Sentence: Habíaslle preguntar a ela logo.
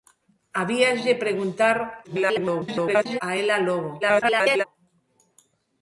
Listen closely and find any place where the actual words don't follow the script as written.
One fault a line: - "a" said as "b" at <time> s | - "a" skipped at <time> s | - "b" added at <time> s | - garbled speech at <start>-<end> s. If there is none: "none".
- garbled speech at 2.0-3.2 s
- garbled speech at 4.0-4.6 s